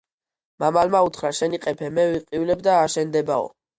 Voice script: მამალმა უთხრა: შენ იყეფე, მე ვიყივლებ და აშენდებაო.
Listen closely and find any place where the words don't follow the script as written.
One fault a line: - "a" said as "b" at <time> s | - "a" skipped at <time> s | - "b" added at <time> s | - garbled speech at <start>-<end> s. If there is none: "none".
none